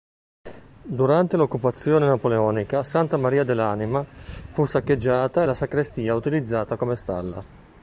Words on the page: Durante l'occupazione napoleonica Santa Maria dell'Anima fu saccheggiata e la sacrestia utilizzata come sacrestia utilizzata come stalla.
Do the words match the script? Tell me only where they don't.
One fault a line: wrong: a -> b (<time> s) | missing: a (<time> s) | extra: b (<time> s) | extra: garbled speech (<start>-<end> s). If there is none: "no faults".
missing: sacrestia utilizzata come (7.0 s)